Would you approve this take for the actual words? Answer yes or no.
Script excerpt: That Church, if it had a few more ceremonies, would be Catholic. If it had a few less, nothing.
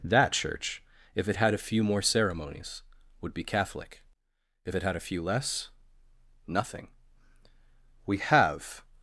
no